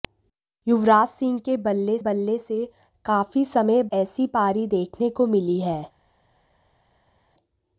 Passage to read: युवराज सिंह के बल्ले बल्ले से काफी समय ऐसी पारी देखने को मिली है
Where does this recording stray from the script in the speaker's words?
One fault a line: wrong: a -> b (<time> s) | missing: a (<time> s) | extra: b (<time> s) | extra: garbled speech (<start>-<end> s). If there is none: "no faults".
no faults